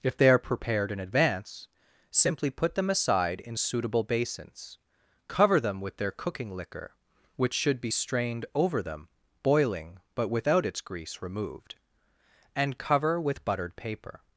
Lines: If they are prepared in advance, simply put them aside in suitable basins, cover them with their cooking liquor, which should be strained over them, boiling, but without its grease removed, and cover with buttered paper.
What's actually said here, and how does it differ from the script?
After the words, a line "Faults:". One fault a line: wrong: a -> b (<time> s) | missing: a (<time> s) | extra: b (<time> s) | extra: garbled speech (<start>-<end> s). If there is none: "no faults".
If they are prepared in advance, simply put them aside in suitable basins, cover them with their cooking liquor, which should be strained over them, boiling, but without its grease removed, and cover with buttered paper.
Faults:
no faults